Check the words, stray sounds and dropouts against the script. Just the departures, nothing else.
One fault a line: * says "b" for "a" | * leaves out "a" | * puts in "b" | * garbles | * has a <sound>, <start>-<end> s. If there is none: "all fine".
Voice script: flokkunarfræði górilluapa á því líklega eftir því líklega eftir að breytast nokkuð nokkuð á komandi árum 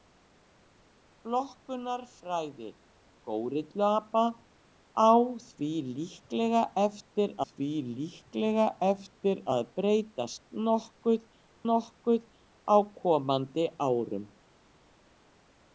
all fine